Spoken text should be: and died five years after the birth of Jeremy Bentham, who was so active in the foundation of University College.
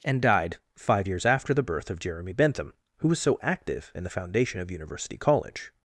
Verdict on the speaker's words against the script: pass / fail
pass